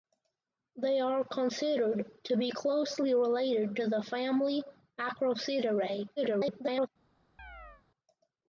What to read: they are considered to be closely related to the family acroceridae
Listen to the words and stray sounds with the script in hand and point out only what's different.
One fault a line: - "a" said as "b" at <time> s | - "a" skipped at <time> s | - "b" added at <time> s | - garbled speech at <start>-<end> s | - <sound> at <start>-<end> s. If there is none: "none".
- garbled speech at 6.2-6.9 s
- chirp at 7.4-7.8 s